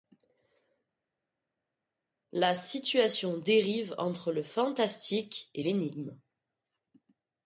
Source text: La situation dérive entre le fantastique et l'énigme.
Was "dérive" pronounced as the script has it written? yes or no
yes